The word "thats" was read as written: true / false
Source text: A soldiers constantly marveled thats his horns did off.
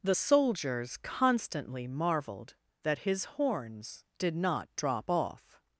false